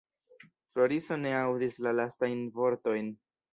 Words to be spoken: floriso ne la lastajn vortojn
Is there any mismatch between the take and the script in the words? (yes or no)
yes